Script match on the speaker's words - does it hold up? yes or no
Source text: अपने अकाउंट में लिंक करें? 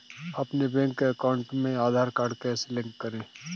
no